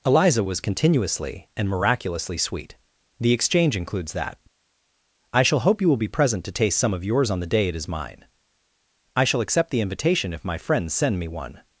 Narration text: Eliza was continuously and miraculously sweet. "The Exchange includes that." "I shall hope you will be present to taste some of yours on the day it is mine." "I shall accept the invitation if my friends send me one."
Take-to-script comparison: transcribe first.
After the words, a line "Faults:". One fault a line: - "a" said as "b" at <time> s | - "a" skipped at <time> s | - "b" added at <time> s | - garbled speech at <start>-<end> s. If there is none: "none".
Eliza was continuously and miraculously sweet. "The Exchange includes that." "I shall hope you will be present to taste some of yours on the day it is mine." "I shall accept the invitation if my friends send me one."
Faults:
none